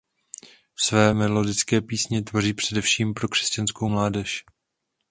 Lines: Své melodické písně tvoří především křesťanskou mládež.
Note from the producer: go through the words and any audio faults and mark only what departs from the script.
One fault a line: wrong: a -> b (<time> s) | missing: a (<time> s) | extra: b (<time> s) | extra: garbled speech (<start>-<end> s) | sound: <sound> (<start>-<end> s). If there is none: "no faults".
extra: pro (3.1 s)